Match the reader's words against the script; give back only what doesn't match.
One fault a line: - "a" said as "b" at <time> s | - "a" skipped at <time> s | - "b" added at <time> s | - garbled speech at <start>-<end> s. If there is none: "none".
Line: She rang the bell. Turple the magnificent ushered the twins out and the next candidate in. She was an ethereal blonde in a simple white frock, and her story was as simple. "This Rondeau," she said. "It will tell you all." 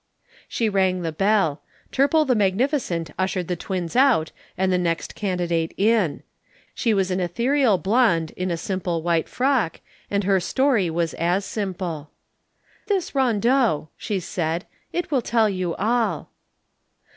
none